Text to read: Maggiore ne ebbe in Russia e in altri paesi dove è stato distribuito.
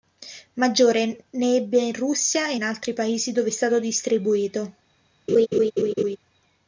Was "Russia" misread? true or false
false